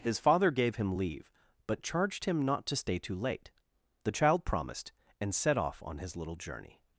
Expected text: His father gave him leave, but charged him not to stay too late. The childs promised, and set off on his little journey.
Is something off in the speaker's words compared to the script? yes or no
yes